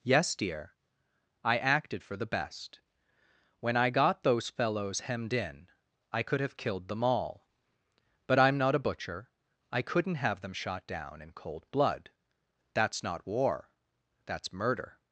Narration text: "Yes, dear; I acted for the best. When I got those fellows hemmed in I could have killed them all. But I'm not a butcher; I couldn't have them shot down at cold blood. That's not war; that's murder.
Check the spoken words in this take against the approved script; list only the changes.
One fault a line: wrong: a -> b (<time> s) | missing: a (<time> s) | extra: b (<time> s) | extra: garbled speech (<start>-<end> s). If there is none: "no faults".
wrong: at -> in (11.2 s)